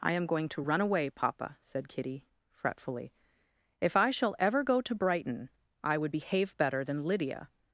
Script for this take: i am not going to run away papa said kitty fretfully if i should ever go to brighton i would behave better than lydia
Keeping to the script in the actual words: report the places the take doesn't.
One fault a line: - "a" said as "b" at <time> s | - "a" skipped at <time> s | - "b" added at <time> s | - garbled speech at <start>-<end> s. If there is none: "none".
- "not" skipped at 0.2 s
- "should" said as "shall" at 4.1 s